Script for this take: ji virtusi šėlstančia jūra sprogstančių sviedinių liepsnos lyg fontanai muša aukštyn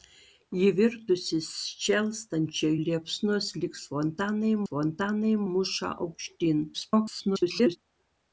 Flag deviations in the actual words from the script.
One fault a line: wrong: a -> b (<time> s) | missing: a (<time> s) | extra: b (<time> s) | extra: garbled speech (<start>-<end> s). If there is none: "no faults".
missing: jūra sprogstančių sviedinių (2.7 s)
extra: fontanai (4.6 s)
extra: garbled speech (6.7-7.8 s)